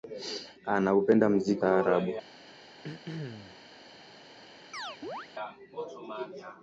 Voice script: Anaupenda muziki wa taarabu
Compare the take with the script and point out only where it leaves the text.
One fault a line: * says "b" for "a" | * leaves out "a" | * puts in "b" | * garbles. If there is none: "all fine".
* leaves out "wa"